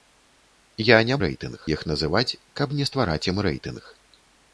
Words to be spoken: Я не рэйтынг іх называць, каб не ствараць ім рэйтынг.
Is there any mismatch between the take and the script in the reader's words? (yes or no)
no